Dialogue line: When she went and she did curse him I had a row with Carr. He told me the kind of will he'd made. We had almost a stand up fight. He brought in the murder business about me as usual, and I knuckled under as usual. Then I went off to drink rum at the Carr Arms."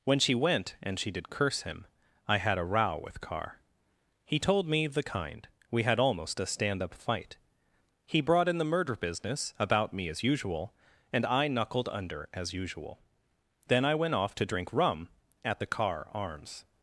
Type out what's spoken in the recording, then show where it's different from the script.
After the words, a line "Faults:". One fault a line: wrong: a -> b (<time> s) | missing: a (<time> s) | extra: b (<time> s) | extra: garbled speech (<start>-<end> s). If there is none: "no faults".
When she went and she did curse him I had a row with Carr. He told me the kind. We had almost a stand up fight. He brought in the murder business about me as usual, and I knuckled under as usual. Then I went off to drink rum at the Carr Arms."
Faults:
missing: of will he'd made (5.5 s)